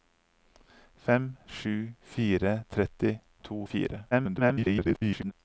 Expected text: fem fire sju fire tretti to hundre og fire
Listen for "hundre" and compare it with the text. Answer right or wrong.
wrong